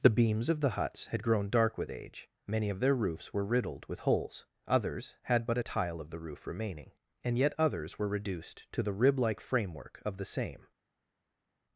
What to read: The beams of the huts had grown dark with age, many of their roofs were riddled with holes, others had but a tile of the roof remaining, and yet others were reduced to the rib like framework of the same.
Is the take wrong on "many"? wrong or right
right